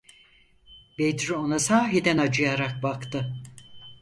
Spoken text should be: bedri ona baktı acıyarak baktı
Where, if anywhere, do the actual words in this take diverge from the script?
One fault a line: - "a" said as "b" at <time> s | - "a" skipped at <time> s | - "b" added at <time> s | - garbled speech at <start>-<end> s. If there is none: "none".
- "baktı" said as "sahiden" at 1.6 s